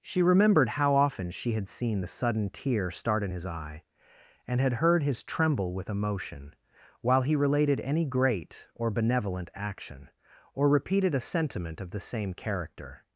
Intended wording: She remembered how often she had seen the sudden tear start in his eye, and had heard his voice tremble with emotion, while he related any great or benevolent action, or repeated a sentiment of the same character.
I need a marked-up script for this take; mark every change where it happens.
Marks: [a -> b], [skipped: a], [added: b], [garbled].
She remembered how often she had seen the sudden tear start in his eye, and had heard his [skipped: voice] tremble with emotion, while he related any great or benevolent action, or repeated a sentiment of the same character.